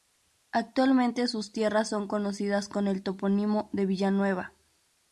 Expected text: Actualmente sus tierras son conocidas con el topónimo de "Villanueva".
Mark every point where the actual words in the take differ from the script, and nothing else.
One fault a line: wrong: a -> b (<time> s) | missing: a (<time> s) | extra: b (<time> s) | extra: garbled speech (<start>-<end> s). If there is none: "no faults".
no faults